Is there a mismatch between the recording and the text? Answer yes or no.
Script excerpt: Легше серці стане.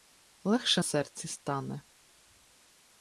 no